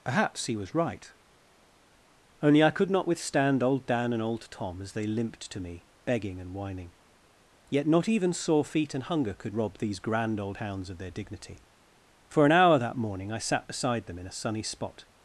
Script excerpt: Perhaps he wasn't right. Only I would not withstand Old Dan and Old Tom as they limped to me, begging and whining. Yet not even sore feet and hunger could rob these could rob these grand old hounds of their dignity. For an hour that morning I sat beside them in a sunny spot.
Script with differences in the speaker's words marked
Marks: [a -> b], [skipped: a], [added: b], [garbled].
Perhaps he [wasn't -> was] right. Only I [would -> could] not withstand Old Dan and Old Tom as they limped to me, begging and whining. Yet not even sore feet and hunger could rob these [skipped: could rob these] grand old hounds of their dignity. For an hour that morning I sat beside them in a sunny spot.